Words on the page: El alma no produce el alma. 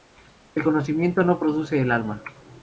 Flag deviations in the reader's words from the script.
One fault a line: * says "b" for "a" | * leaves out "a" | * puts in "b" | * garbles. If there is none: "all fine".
* says "conocimiento" for "alma"